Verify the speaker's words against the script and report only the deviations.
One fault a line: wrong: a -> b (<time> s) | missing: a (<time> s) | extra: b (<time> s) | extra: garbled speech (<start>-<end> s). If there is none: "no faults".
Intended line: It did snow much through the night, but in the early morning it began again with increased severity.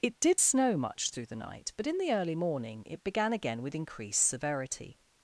no faults